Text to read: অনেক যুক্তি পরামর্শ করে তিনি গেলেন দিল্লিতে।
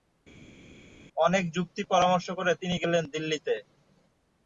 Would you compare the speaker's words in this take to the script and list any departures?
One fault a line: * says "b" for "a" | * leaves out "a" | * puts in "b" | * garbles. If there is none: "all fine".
all fine